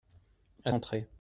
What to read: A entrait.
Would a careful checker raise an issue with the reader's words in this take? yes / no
no